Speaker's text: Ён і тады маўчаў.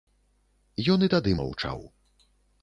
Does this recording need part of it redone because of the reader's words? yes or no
no